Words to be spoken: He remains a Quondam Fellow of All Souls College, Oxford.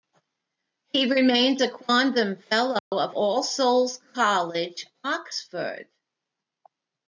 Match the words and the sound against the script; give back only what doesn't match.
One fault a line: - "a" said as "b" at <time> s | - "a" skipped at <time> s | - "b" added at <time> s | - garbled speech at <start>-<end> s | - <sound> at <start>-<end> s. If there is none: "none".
- dropout at 2.8-2.9 s